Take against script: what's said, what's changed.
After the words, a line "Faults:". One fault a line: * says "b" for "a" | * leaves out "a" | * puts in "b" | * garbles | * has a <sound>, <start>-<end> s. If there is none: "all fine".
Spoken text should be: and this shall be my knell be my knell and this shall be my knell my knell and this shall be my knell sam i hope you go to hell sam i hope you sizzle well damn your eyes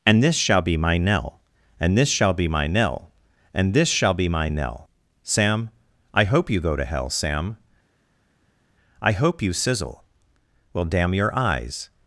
and this shall be my knell and this shall be my knell and this shall be my knell sam i hope you go to hell sam i hope you sizzle well damn your eyes
Faults:
* leaves out "be my knell"
* leaves out "my knell"